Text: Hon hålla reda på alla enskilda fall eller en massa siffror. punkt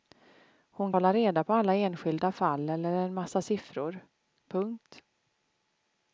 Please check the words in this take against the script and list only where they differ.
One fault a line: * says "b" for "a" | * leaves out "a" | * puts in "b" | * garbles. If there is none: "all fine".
all fine